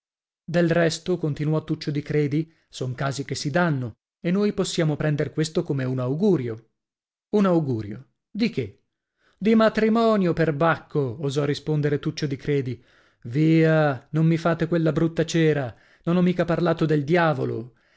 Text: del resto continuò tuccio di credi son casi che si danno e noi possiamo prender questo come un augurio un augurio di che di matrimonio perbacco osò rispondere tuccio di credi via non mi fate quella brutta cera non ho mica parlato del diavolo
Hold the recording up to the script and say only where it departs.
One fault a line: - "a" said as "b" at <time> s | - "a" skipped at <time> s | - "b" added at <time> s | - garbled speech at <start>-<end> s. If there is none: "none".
none